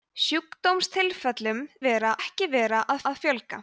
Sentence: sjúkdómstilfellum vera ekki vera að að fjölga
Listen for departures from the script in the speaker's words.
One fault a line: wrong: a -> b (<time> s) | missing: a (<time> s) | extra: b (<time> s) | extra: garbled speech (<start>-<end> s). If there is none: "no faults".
no faults